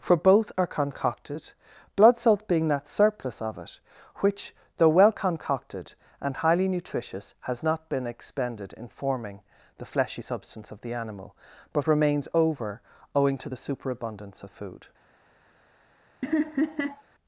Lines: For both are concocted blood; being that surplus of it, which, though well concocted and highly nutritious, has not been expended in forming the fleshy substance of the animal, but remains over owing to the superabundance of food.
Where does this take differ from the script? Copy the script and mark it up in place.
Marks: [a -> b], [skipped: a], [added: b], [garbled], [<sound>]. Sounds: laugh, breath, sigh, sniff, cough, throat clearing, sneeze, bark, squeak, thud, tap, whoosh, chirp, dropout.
For both are concocted blood; [added: salt] being that surplus of it, which, though well concocted and highly nutritious, has not been expended in forming the fleshy substance of the animal, but remains over owing to the superabundance of food. [laugh]